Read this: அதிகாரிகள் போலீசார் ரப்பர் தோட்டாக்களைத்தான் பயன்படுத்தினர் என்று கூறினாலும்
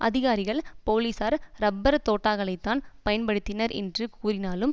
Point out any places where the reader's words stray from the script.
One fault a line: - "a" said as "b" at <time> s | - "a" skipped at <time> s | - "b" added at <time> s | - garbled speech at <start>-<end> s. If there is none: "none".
none